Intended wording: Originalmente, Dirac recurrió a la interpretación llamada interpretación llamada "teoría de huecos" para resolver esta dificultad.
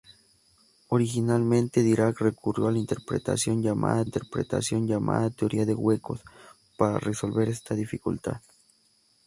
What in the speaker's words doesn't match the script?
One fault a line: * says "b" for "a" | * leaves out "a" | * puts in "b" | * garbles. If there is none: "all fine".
all fine